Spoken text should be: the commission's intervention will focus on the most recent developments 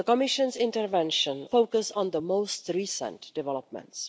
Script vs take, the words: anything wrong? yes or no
yes